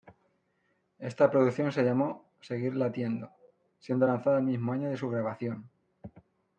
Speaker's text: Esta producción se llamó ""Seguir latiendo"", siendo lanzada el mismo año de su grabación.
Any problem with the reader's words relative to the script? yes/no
no